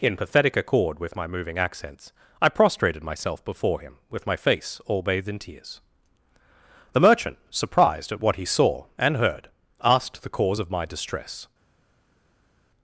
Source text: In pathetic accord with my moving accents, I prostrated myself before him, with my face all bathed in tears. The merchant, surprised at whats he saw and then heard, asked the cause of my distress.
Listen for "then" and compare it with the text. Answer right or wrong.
wrong